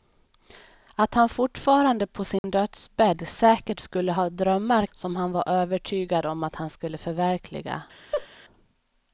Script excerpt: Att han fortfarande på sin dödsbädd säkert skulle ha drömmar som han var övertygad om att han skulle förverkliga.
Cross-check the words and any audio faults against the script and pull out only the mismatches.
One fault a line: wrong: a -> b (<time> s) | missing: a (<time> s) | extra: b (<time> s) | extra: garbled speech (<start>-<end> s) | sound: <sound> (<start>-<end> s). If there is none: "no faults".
sound: dropout (2.4-2.4 s)
sound: laugh (8.1-8.3 s)